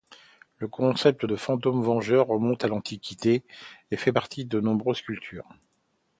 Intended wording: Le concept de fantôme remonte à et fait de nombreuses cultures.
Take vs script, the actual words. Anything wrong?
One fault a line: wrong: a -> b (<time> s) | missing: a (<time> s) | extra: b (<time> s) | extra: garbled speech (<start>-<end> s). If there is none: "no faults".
extra: vengeur (1.8 s)
extra: l'Antiquité (2.7 s)
extra: partie (4.1 s)